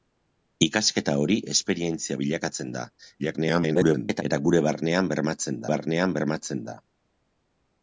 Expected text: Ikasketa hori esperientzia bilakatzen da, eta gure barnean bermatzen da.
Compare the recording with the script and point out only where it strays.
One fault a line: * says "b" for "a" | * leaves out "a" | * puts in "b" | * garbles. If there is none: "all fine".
* garbles
* puts in "barnean bermatzen"